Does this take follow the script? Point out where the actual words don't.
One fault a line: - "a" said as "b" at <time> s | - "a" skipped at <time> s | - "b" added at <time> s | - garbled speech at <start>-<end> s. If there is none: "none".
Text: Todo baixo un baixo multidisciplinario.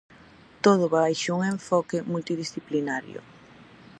- "baixo" said as "enfoque" at 1.5 s